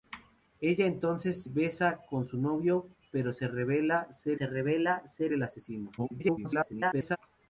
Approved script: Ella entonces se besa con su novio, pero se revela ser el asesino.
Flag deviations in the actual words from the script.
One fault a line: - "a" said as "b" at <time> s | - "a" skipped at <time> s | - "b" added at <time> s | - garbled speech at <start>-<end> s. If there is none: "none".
- "se" skipped at 1.4 s
- "se revela ser" added at 4.3 s
- garbled speech at 6.0-7.2 s